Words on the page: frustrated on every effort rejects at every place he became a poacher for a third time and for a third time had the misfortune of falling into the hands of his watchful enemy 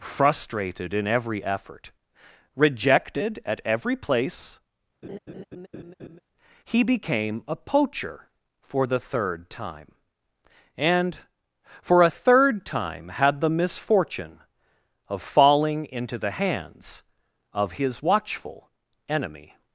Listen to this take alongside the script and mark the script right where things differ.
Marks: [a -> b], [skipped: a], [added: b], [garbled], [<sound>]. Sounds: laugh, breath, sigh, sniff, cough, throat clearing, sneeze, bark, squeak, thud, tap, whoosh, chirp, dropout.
frustrated [on -> in] every effort [rejects -> rejected] at every place [laugh] he became a poacher for [a -> the] third time and for a third time had the misfortune of falling into the hands of his watchful enemy